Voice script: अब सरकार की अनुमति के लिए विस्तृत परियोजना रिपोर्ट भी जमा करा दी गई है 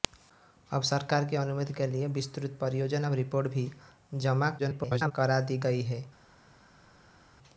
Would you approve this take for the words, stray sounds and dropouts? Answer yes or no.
no